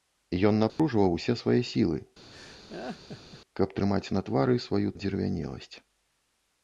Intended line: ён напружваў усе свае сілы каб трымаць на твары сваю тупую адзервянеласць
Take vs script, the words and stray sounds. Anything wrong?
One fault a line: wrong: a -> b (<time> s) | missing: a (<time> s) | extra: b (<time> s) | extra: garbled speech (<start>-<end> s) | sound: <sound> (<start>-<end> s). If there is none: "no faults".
sound: dropout (0.7-0.8 s)
sound: laugh (2.3-3.4 s)
missing: тупую (4.9 s)